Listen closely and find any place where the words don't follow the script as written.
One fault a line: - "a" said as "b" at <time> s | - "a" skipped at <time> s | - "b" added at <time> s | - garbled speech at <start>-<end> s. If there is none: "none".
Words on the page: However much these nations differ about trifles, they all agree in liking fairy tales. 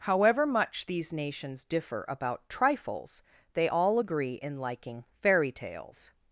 none